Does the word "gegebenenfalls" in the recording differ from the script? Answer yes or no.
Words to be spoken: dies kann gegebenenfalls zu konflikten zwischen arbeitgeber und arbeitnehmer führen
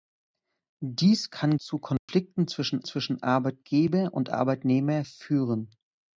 yes